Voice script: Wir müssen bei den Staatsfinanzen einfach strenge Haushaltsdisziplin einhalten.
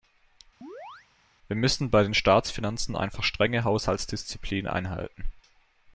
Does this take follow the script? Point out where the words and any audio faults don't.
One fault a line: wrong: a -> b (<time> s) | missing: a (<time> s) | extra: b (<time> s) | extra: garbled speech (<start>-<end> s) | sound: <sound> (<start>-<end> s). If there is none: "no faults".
sound: chirp (0.6-1.1 s)